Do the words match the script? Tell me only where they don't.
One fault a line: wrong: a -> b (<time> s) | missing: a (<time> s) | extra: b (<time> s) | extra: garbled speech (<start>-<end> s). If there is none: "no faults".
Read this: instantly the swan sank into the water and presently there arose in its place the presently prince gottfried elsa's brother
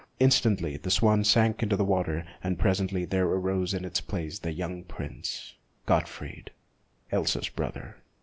wrong: presently -> young (4.5 s)